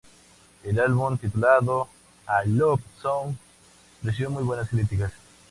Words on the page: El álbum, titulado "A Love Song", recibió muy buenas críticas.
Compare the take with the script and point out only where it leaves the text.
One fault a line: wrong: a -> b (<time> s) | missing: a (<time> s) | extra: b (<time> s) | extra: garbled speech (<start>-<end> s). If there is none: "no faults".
no faults